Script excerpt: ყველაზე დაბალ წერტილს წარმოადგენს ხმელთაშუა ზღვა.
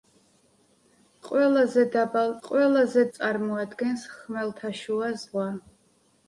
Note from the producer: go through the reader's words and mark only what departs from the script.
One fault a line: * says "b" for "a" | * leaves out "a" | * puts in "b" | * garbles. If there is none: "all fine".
* says "ყველაზე" for "წერტილს"